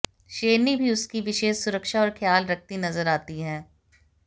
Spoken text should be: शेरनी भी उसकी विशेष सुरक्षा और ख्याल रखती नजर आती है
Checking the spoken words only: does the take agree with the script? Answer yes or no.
yes